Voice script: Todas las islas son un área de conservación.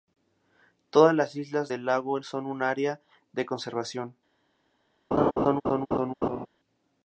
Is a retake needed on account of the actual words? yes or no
yes